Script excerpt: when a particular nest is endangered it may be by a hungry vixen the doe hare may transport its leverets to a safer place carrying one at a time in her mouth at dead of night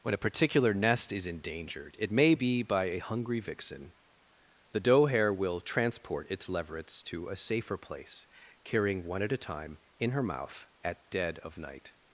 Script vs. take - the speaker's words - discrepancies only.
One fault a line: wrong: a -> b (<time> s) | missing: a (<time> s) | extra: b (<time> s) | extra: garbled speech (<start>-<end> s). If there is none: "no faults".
wrong: may -> will (5.3 s)